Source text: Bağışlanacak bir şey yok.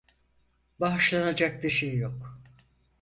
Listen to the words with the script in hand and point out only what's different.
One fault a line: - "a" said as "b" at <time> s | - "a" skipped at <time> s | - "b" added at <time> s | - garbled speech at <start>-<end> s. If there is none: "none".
none